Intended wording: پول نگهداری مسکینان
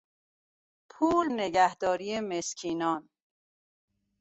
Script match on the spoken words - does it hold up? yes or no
yes